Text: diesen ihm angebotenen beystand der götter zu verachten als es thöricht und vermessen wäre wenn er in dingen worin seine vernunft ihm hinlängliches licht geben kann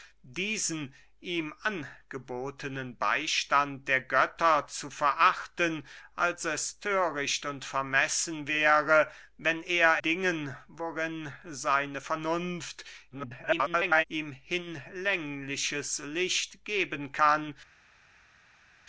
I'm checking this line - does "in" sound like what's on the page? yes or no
no